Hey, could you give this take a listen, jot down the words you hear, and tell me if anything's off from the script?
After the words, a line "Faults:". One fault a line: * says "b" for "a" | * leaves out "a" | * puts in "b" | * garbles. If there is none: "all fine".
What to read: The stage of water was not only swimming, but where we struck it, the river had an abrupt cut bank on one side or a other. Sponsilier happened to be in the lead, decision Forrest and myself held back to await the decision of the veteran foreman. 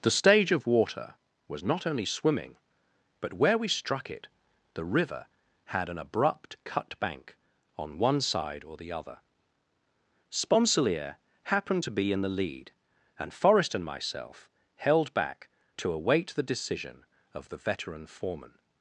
The stage of water was not only swimming, but where we struck it, the river had an abrupt cut bank on one side or the other. Sponsilier happened to be in the lead, and Forrest and myself held back to await the decision of the veteran foreman.
Faults:
* says "the" for "a"
* says "and" for "decision"